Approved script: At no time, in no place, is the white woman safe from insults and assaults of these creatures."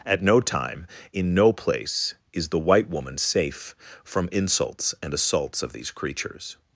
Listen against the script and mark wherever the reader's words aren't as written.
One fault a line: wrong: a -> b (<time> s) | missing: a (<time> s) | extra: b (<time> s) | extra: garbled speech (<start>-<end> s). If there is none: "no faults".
no faults